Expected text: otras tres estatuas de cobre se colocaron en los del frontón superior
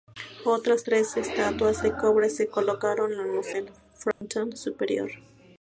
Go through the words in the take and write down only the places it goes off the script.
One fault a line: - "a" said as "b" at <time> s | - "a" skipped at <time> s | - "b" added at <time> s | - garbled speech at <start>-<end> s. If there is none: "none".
none